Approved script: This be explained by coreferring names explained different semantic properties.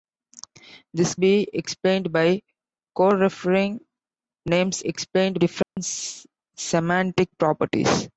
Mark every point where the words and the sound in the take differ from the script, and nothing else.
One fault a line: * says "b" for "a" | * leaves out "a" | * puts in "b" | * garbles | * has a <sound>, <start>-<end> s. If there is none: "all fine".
* has a dropout, 5.6-5.8 s